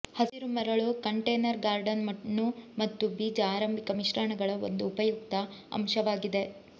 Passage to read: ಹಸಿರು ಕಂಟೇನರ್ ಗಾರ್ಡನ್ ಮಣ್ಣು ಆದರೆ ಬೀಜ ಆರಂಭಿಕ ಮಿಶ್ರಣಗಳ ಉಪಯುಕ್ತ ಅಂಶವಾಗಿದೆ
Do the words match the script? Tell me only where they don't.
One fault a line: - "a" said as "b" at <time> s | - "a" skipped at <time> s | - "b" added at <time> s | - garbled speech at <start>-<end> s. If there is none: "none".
- "ಮರಳು" added at 0.5 s
- "ಆದರೆ" said as "ಮತ್ತು" at 2.8 s
- "ಒಂದು" added at 4.7 s